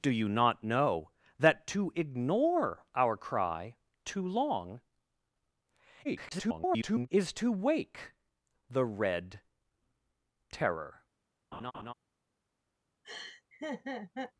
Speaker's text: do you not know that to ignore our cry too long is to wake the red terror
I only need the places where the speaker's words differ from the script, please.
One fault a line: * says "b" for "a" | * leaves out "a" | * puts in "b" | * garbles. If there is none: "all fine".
* garbles